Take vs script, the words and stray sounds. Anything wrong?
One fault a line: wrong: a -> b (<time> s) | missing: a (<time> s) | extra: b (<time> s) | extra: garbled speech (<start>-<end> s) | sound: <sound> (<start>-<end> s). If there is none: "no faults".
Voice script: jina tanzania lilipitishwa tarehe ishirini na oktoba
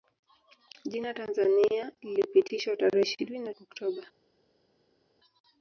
no faults